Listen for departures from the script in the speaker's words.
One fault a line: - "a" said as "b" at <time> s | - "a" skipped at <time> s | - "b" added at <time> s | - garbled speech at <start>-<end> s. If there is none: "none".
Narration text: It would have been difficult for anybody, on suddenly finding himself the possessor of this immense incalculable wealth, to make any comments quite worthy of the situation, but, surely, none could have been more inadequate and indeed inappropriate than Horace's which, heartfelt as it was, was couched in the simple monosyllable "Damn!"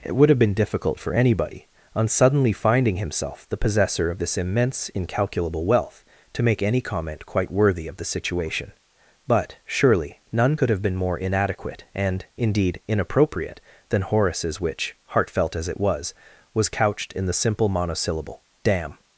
- "comments" said as "comment" at 6.8 s